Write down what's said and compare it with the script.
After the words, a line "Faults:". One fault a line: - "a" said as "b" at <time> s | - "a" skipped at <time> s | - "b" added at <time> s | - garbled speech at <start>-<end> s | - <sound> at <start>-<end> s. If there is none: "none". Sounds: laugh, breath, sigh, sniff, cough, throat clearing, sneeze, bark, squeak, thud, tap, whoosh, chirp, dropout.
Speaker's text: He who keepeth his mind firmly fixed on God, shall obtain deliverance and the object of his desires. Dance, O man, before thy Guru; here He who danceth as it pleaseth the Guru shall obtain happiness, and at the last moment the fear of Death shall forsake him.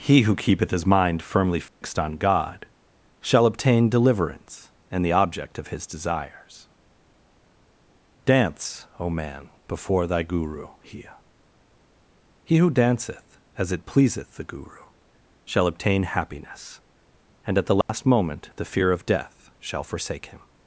He who keepeth his mind firmly fixed on God, shall obtain deliverance and the object of his desires. Dance, O man, before thy Guru; here He who danceth as it pleaseth the Guru shall obtain happiness, and at the last moment the fear of Death shall forsake him.
Faults:
- dropout at 1.7-1.8 s
- dropout at 17.8-17.9 s